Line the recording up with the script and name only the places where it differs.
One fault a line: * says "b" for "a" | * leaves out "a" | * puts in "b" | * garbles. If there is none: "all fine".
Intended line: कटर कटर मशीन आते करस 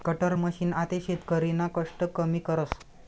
* leaves out "कटर"
* puts in "शेतकरीना कष्ट कमी"